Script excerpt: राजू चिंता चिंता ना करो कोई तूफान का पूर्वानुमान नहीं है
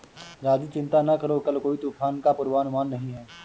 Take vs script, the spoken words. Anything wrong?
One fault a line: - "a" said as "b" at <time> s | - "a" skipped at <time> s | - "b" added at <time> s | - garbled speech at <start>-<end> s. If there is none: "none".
- "चिंता" skipped at 1.0 s
- "कल" added at 1.4 s